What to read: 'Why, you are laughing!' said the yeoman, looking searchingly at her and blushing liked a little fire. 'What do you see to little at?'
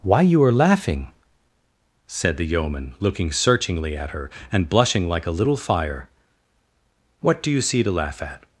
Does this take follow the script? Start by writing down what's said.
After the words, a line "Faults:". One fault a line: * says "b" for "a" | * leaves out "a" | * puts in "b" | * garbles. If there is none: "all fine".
'Why, you are laughing!' said the yeoman, looking searchingly at her and blushing like a little fire. 'What do you see to laugh at?'
Faults:
* says "like" for "liked"
* says "laugh" for "little"